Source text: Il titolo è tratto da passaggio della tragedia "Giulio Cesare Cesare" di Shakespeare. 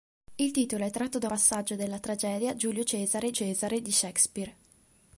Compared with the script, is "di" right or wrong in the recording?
right